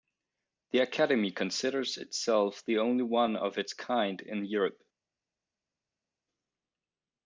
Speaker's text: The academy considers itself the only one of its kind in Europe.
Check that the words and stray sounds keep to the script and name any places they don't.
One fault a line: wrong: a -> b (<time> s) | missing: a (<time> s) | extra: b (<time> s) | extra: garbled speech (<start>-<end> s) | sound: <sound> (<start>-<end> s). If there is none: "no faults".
no faults